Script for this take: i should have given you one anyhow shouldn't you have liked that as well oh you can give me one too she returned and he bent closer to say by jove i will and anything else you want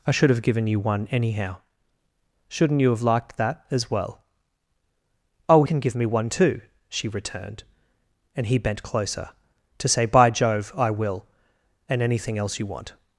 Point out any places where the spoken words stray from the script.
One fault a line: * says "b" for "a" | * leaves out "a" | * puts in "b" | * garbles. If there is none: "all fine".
* leaves out "you"